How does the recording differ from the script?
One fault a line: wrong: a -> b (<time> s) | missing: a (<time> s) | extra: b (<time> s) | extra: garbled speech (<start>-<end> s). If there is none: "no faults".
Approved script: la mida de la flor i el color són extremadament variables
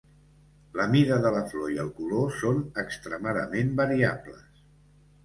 no faults